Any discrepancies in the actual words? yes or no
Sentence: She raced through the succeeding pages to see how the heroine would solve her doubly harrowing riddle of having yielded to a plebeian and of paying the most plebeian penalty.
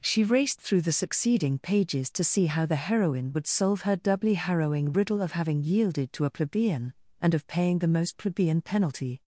no